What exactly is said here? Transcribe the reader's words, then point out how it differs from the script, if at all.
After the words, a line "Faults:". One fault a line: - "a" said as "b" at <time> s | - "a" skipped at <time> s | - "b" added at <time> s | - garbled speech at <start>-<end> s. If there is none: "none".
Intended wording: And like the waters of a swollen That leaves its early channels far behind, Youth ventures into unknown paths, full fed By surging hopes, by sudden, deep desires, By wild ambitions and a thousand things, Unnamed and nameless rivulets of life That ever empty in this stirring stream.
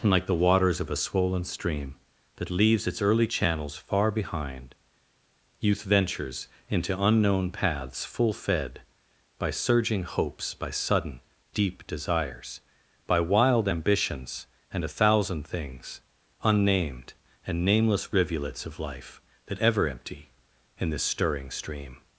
And like the waters of a swollen stream, That leaves its early channels far behind, Youth ventures into unknown paths, full fed By surging hopes, by sudden, deep desires, By wild ambitions and a thousand things, Unnamed and nameless rivulets of life That ever empty in this stirring stream.
Faults:
- "stream" added at 1.4 s